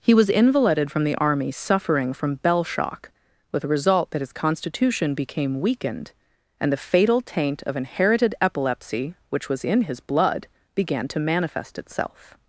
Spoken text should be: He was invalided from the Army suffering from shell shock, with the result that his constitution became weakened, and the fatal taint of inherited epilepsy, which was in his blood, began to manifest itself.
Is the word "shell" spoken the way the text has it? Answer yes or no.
no